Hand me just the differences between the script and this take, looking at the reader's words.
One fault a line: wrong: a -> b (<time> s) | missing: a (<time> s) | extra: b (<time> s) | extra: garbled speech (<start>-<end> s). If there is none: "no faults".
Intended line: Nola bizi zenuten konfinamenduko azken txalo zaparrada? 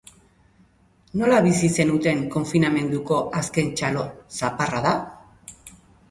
no faults